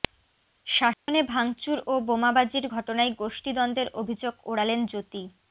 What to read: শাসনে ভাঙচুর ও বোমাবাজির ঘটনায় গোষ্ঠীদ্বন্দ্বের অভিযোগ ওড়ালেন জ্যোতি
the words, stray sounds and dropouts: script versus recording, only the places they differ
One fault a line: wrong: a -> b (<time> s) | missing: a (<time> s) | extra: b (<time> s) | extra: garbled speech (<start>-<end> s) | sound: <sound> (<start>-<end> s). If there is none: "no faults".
sound: dropout (0.9-1.1 s)